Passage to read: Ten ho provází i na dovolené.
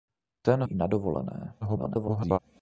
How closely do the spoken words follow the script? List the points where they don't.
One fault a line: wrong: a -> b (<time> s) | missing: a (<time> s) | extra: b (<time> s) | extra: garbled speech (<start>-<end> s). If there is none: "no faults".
missing: ho provází (0.6 s)
extra: garbled speech (1.6-2.4 s)